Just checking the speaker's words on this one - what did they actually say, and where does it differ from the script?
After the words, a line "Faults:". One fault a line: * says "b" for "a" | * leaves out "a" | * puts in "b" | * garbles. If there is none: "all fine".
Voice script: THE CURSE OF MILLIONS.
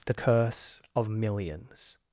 THE CURSE OF MILLIONS.
Faults:
all fine